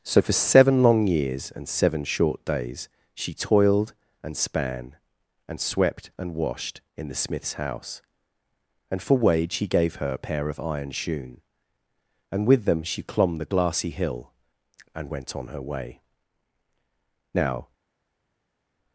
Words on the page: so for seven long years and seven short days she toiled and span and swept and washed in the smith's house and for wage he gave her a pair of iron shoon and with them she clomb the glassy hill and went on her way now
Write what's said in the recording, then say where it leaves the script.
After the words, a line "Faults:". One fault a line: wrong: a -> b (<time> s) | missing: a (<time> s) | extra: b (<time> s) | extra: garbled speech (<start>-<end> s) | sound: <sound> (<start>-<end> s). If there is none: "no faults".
so for seven long years and seven short days she toiled and span and swept and washed in the smith's house and for wage he gave her a pair of iron shoon and with them she clomb the glassy hill and went on her way now
Faults:
no faults